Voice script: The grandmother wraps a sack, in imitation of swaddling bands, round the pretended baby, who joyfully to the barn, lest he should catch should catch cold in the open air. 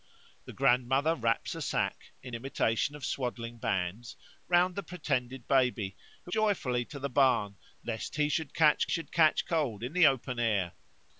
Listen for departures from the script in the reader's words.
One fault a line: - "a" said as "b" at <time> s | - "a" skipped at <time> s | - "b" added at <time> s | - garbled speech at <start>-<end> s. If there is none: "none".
none